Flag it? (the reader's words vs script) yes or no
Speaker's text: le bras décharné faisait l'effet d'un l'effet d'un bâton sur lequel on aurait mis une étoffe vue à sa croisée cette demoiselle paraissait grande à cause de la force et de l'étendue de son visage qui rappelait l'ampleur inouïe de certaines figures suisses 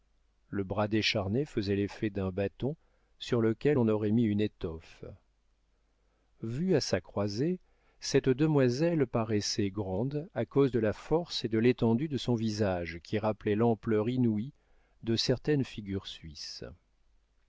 yes